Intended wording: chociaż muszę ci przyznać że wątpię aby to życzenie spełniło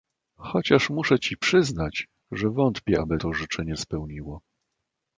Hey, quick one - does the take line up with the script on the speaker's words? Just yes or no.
yes